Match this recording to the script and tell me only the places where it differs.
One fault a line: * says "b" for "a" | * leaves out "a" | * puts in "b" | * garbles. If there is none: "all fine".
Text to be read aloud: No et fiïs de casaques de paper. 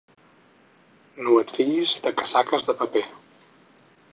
all fine